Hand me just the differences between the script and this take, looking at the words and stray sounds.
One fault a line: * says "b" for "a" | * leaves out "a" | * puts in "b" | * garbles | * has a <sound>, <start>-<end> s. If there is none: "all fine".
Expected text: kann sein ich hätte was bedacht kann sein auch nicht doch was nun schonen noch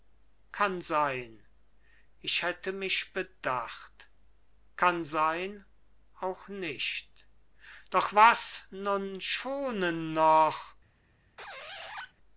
* says "mich" for "was"
* has a squeak, 11.4-12.1 s